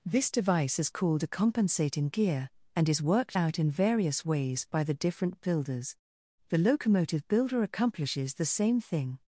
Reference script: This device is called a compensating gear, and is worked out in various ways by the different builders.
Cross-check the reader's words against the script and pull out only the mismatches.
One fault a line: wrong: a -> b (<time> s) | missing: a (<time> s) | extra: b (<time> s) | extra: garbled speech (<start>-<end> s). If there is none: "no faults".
extra: The locomotive builder accomplishes the same thing (6.5 s)